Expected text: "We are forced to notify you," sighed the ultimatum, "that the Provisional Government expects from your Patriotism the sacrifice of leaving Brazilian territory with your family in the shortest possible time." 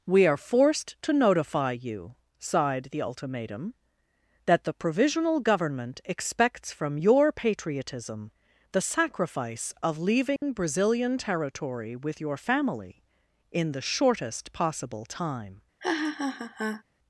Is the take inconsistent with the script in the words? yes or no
no